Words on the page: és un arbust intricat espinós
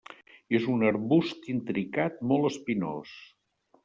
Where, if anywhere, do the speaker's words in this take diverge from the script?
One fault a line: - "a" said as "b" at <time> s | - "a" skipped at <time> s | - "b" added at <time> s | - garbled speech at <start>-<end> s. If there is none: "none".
- "molt" added at 2.3 s